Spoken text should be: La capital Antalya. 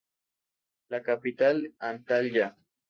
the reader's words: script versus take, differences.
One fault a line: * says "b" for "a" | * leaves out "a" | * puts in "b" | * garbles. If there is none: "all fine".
all fine